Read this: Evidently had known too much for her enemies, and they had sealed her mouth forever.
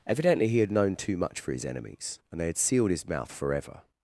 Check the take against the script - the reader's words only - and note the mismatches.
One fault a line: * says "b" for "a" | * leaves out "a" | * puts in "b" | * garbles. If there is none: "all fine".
* puts in "he"
* says "his" for "her"
* says "his" for "her"